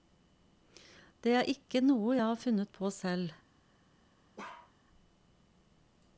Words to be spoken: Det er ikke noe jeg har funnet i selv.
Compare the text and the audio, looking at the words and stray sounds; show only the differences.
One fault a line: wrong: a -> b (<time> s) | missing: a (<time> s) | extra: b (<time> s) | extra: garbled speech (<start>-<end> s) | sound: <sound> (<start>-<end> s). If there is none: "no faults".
wrong: i -> på (2.8 s)
sound: bark (4.4-4.7 s)